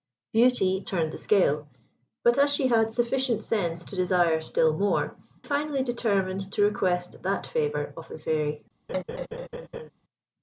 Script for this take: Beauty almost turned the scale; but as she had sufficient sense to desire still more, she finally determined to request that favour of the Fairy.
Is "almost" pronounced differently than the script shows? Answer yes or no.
yes